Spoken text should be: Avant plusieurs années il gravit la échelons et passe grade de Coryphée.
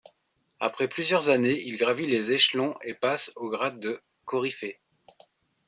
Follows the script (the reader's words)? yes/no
no